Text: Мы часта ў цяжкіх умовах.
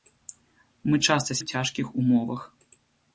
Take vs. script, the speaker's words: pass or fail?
pass